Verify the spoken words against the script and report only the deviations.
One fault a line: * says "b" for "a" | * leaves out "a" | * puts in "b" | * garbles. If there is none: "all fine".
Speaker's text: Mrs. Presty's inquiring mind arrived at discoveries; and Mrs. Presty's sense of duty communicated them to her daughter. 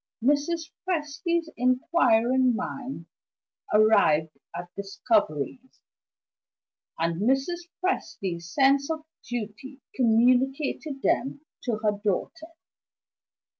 all fine